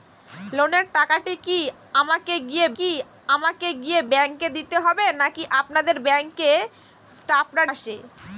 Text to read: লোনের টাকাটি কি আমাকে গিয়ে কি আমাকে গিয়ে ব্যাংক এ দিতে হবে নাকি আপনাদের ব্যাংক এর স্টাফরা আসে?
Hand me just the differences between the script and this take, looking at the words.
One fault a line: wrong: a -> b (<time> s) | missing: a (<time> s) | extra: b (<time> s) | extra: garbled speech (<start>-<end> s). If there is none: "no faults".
no faults